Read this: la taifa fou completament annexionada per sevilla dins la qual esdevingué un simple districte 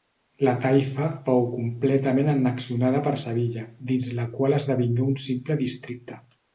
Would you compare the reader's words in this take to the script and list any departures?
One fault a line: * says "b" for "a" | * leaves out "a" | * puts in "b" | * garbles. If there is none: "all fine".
all fine